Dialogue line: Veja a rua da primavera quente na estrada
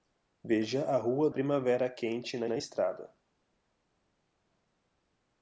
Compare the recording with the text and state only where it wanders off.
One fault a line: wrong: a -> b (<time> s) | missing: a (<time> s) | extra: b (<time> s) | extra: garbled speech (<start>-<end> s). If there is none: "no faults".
missing: da (1.3 s)
extra: na (2.5 s)